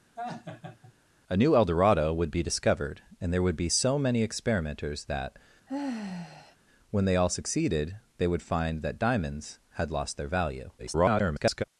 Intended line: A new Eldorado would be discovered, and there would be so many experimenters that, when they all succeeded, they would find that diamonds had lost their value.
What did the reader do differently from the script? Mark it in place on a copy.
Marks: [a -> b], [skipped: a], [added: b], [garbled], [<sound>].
[laugh] A new Eldorado would be discovered, and there would be so many experimenters that, [sigh] when they all succeeded, they would find that diamonds had lost their value. [garbled]